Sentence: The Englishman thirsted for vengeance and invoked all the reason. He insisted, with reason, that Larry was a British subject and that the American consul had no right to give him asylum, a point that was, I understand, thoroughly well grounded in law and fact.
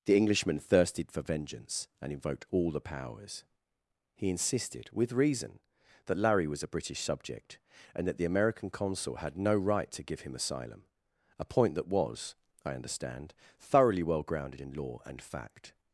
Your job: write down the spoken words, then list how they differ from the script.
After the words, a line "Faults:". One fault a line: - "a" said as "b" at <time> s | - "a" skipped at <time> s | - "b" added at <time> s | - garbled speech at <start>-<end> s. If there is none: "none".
The Englishman thirsted for vengeance and invoked all the powers. He insisted, with reason, that Larry was a British subject and that the American consul had no right to give him asylum, a point that was, I understand, thoroughly well grounded in law and fact.
Faults:
- "reason" said as "powers" at 2.8 s